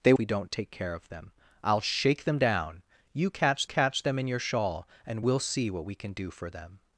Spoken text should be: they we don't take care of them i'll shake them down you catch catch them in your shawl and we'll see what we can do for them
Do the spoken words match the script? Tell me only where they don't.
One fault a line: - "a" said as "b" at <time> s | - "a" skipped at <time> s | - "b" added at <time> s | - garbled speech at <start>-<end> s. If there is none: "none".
none